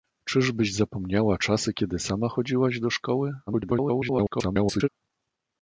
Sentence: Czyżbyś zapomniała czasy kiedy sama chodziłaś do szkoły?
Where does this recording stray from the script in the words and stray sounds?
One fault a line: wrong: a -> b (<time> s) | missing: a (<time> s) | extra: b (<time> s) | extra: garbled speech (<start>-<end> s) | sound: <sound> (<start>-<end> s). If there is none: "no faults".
extra: garbled speech (3.5-4.9 s)